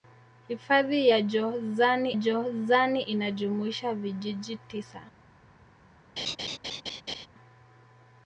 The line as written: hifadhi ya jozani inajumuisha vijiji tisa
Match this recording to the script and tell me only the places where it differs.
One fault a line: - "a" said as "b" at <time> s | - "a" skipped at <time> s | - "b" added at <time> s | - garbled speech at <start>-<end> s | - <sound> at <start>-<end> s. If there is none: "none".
- "jozani" added at 2.1 s
- laugh at 6.2-7.3 s